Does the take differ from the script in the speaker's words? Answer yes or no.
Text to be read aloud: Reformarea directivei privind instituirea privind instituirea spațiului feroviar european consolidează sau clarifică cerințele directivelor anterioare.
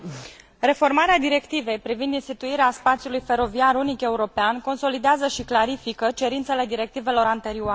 yes